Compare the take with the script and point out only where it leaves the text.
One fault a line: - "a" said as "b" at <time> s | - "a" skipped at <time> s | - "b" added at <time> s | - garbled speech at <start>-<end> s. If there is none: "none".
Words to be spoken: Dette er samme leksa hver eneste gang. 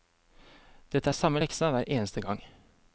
none